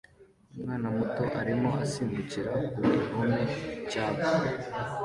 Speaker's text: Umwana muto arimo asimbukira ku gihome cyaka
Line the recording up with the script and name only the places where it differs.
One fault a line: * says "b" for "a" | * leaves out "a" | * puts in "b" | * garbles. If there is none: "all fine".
all fine